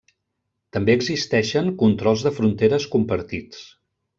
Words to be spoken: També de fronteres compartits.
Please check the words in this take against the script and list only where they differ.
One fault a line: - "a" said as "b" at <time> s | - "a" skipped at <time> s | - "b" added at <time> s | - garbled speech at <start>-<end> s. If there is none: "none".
- "existeixen controls" added at 1.0 s